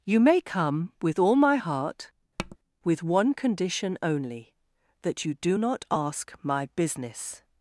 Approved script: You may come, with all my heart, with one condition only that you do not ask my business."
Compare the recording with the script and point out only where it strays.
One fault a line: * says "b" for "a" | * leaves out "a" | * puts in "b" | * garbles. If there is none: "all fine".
all fine